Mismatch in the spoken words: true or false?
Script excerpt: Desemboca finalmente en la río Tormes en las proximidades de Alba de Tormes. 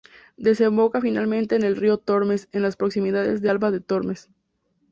true